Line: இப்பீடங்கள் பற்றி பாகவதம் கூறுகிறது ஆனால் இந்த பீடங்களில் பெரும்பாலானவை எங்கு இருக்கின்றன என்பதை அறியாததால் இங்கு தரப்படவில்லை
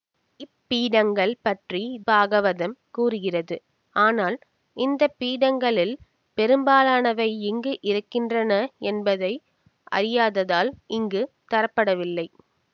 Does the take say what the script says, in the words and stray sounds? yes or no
yes